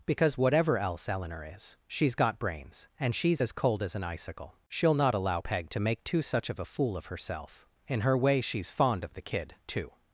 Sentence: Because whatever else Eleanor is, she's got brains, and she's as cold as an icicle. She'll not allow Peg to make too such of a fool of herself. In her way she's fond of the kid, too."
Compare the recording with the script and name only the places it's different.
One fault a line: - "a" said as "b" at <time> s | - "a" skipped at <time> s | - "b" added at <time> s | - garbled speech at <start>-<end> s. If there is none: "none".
none